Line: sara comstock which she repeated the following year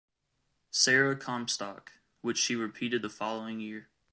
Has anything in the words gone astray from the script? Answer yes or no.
no